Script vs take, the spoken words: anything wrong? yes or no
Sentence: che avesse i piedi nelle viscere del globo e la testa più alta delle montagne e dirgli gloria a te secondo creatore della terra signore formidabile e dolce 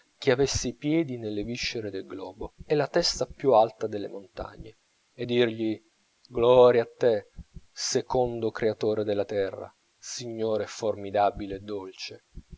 no